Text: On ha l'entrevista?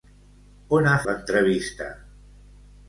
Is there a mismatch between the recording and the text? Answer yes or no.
no